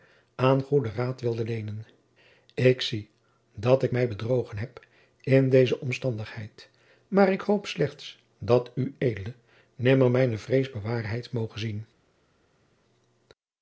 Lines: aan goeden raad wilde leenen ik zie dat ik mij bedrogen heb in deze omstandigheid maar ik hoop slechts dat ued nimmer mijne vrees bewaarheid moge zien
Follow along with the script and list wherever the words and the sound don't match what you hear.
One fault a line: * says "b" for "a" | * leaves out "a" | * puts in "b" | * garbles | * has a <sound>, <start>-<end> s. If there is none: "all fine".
all fine